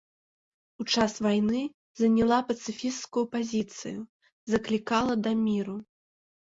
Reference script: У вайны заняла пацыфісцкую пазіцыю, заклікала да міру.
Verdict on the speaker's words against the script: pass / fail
fail